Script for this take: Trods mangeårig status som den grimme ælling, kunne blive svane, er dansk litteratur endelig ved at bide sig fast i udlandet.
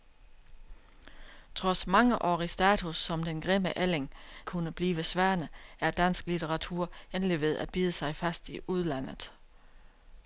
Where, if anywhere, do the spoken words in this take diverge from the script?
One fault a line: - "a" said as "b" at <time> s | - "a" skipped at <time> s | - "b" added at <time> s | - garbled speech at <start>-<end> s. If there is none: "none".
none